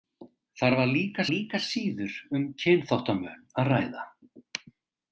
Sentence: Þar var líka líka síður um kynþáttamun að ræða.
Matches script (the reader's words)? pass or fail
pass